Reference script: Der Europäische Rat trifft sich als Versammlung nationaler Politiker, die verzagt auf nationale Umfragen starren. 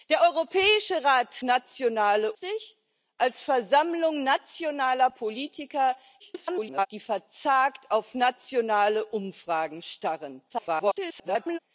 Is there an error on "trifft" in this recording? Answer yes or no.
yes